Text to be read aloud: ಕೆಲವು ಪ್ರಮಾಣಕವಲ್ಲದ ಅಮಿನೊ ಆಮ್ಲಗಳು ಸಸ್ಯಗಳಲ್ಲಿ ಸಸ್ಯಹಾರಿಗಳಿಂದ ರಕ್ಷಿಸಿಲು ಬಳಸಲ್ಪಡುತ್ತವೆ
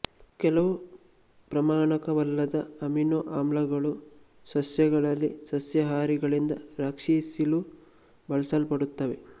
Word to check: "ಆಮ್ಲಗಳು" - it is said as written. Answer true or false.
true